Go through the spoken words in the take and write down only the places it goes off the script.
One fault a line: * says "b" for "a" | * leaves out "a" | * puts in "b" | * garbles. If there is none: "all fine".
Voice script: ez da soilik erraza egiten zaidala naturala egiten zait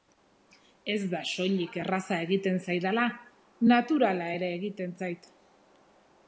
* puts in "ere"